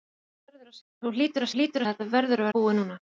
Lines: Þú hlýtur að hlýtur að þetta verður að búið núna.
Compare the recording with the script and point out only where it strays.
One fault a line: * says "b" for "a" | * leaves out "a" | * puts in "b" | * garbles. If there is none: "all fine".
all fine